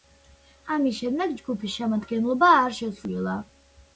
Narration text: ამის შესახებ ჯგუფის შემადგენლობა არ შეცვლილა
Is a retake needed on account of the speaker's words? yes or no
yes